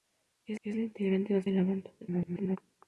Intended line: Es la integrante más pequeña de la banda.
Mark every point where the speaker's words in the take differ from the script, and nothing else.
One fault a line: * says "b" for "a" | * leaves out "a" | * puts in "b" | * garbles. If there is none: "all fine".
* puts in "es"
* leaves out "pequeña"
* garbles